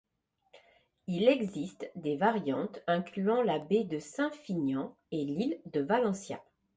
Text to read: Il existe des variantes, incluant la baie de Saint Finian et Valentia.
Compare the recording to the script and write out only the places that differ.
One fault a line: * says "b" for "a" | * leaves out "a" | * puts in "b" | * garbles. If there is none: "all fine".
* puts in "l'île de"